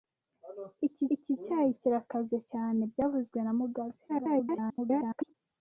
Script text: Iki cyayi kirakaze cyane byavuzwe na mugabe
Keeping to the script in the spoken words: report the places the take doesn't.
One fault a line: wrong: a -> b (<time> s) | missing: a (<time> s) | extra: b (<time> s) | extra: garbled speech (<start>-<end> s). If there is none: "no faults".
extra: iki (1.1 s)
extra: garbled speech (4.1-5.3 s)